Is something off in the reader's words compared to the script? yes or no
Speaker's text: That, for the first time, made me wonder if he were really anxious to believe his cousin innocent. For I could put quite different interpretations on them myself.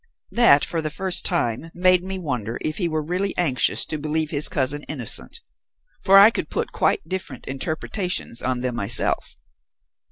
no